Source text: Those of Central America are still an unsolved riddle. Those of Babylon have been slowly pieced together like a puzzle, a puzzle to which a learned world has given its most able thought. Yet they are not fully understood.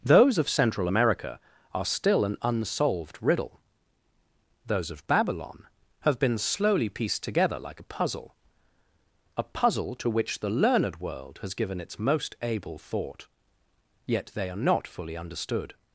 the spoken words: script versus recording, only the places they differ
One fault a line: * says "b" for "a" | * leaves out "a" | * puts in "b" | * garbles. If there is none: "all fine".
* says "the" for "a"